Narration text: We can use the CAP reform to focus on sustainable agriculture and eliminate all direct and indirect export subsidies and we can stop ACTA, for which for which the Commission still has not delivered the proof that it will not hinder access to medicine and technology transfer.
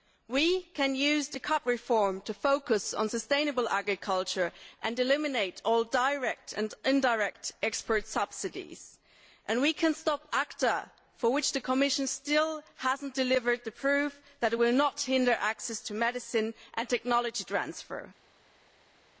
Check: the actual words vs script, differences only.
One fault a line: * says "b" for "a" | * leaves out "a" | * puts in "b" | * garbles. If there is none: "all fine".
* leaves out "for which"